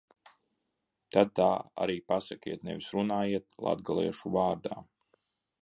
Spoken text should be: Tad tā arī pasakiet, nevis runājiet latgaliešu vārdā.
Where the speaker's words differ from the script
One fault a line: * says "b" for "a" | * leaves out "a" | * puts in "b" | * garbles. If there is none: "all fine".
all fine